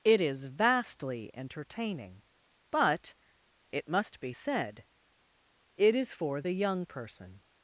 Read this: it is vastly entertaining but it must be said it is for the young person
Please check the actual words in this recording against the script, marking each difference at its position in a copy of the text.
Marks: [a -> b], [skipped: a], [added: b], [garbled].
it is vastly entertaining but it must be said it is for the young person